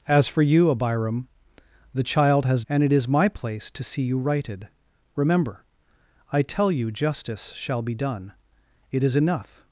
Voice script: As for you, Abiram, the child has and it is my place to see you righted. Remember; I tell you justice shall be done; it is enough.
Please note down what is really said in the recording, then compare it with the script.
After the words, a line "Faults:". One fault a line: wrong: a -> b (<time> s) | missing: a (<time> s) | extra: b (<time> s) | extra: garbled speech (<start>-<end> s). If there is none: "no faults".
As for you, Abiram, the child has and it is my place to see you righted. Remember; I tell you justice shall be done; it is enough.
Faults:
no faults